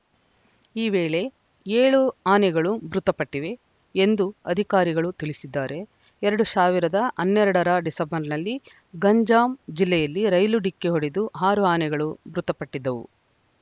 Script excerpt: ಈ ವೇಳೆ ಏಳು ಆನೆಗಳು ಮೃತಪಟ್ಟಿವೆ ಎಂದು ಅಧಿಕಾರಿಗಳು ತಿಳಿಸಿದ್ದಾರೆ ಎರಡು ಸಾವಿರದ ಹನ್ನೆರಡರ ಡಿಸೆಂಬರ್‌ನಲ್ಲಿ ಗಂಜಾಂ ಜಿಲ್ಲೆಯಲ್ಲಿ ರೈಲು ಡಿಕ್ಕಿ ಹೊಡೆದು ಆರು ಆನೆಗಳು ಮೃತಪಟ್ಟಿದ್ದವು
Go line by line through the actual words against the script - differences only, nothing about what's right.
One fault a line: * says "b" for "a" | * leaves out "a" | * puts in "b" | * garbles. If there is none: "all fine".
all fine